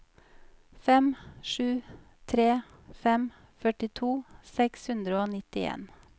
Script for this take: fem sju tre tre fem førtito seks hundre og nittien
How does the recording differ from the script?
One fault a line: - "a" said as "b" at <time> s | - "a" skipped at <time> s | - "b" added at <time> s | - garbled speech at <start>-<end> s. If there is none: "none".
- "tre" skipped at 2.5 s